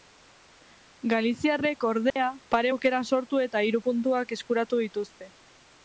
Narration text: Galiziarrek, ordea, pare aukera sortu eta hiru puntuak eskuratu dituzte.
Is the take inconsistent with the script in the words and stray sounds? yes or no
yes